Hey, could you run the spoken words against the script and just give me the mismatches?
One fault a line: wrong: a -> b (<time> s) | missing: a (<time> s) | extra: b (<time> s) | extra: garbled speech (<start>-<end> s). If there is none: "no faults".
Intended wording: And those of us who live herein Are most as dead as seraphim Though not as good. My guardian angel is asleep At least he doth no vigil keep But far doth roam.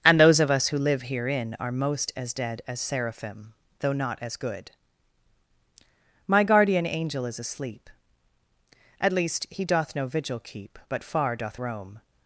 no faults